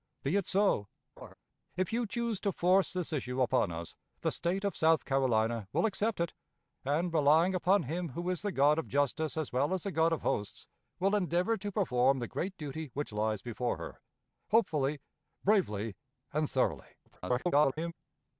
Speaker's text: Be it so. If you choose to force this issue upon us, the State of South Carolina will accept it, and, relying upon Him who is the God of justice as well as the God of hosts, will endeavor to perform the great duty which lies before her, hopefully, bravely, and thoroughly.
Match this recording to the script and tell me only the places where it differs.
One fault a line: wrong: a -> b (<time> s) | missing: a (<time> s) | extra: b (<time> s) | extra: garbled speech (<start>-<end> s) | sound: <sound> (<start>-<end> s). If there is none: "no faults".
sound: laugh (1.2-1.3 s)
extra: garbled speech (17.1-17.9 s)